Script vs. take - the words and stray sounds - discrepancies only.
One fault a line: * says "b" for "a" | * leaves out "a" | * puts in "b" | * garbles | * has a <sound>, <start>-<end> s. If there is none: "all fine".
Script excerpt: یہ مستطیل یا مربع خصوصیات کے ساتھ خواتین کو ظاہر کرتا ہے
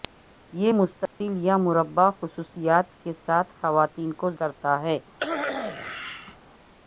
* has a dropout, 1.1-1.2 s
* leaves out "ظاہر"
* has a cough, 5.2-6.4 s